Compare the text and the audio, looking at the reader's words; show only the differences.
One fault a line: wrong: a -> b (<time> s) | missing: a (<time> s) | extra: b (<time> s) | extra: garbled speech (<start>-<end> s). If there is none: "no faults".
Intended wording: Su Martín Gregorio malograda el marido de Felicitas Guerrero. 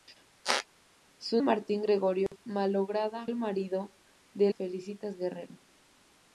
no faults